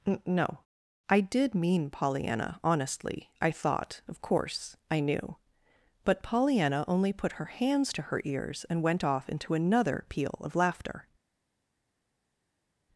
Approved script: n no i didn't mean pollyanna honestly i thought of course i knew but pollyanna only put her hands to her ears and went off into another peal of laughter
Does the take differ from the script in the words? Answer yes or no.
yes